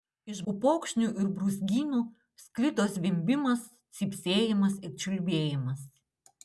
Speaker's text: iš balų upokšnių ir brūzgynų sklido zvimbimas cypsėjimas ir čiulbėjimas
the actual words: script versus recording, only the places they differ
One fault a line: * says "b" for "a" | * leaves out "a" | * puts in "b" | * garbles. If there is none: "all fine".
* leaves out "balų"